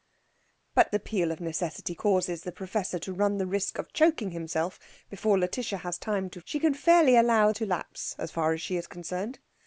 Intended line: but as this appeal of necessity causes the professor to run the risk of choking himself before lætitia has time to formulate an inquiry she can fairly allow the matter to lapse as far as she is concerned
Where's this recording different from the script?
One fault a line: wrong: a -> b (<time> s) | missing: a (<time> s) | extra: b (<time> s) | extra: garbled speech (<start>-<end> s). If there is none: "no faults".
missing: as this (0.9 s)
missing: formulate an inquiry (6.4 s)
missing: the matter (7.5 s)